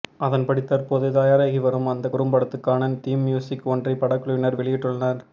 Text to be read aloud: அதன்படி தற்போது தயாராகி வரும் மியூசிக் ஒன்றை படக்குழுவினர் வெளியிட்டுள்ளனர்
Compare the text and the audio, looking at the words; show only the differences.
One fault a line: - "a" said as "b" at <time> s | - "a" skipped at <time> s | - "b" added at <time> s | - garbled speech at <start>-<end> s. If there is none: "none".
- "அந்த குறும்படத்துக்கான தீம்" added at 1.9 s